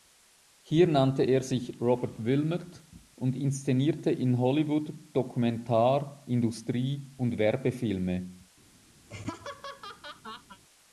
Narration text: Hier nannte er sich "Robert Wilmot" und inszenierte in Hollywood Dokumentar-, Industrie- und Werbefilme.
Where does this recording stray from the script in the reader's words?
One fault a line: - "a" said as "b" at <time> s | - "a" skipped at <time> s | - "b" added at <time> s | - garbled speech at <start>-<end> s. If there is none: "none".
none